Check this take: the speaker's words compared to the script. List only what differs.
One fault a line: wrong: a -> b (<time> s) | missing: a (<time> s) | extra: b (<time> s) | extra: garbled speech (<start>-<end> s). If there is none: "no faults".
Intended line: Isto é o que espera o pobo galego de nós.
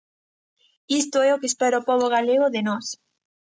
no faults